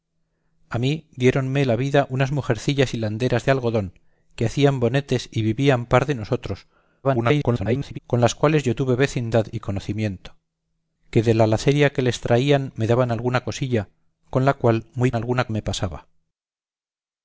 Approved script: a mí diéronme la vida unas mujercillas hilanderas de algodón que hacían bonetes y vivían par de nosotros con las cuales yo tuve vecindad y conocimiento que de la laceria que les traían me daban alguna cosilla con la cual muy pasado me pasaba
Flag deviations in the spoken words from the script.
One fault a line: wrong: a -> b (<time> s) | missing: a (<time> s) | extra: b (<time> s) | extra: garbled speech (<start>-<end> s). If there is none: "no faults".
extra: garbled speech (7.0-8.0 s)
wrong: pasado -> alguna (15.1 s)